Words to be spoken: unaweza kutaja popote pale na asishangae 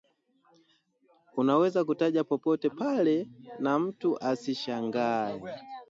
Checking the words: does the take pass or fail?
fail